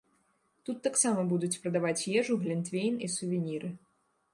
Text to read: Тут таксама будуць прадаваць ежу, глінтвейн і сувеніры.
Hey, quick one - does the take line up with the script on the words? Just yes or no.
yes